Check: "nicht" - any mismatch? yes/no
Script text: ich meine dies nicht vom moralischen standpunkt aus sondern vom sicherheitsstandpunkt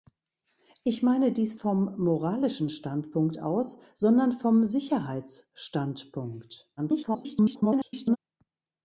yes